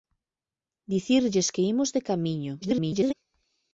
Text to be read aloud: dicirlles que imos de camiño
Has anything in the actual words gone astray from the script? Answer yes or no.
yes